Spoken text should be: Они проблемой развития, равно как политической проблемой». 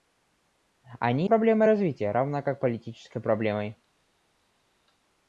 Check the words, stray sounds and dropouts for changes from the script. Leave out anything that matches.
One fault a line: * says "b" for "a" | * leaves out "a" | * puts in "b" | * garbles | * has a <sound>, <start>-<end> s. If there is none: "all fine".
all fine